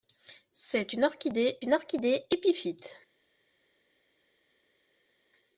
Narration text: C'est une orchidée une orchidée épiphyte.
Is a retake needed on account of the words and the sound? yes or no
no